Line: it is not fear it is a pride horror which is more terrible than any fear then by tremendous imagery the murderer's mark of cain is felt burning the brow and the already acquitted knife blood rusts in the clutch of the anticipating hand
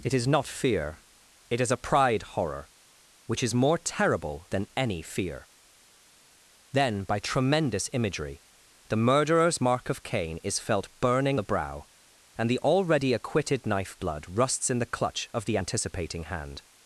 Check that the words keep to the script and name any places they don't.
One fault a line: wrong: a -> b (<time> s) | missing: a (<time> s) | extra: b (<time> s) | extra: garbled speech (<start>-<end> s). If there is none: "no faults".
no faults